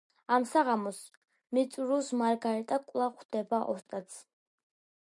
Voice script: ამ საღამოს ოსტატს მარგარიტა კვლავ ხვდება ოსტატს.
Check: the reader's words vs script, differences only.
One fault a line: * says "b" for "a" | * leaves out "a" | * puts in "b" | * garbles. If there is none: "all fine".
* says "მიწურულს" for "ოსტატს"